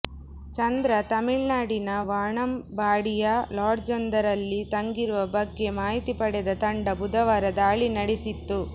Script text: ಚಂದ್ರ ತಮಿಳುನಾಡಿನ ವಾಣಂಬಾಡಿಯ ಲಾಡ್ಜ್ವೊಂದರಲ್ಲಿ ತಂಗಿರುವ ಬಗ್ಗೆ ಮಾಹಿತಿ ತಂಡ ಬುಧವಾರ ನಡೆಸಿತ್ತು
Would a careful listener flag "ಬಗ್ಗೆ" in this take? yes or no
no